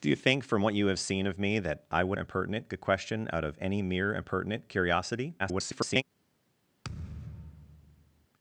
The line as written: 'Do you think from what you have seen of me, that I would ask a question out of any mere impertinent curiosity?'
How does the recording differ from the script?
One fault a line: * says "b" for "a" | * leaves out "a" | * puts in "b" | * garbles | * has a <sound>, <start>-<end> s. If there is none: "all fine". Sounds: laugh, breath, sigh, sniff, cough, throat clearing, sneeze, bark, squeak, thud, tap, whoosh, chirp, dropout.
* says "impertinent" for "ask"
* garbles
* has a thud, 6.8-8.3 s